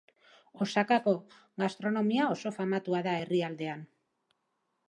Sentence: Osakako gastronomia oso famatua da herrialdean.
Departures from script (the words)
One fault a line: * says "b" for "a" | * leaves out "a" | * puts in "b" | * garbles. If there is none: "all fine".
all fine